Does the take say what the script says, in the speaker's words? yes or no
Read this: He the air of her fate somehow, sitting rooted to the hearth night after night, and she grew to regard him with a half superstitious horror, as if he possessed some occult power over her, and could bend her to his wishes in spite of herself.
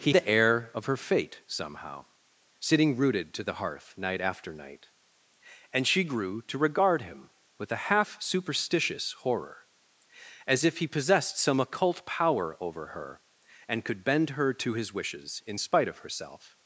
yes